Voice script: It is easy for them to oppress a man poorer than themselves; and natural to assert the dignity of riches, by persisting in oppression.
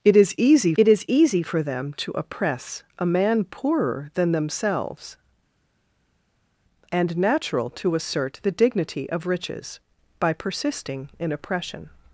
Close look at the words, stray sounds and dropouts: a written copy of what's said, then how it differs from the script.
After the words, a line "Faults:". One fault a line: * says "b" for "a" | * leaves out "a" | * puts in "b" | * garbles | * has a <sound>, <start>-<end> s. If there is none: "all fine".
It is easy it is easy for them to oppress a man poorer than themselves; and natural to assert the dignity of riches, by persisting in oppression.
Faults:
* puts in "it is easy"